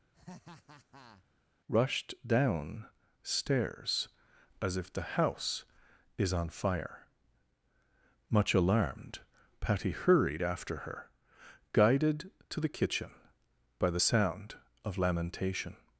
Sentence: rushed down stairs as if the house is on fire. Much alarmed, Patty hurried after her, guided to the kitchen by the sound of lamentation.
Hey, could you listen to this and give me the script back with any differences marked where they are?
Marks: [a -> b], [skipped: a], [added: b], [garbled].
rushed down stairs as if the house is on fire. Much alarmed, Patty hurried after her, guided to the kitchen by the sound of lamentation.